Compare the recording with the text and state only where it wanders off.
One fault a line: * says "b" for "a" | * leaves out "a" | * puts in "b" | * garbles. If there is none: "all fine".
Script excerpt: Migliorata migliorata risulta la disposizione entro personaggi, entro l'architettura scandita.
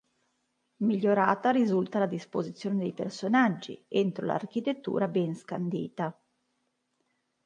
* leaves out "migliorata"
* says "dei" for "entro"
* puts in "ben"